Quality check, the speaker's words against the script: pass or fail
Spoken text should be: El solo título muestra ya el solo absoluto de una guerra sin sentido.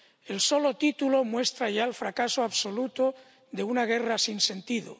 fail